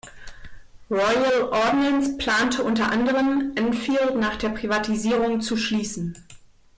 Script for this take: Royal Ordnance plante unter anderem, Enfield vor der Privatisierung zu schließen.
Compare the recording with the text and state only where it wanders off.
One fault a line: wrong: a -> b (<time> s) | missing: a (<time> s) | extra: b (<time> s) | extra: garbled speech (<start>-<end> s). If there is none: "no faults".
wrong: vor -> nach (4.2 s)